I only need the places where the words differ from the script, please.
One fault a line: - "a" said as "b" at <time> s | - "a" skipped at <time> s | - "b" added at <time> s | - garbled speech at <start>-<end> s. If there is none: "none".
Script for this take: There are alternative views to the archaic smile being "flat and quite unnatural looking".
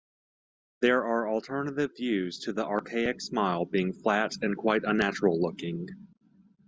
none